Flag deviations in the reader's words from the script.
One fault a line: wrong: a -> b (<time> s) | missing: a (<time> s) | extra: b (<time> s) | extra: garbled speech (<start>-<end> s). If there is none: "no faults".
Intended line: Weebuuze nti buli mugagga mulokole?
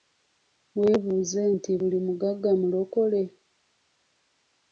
no faults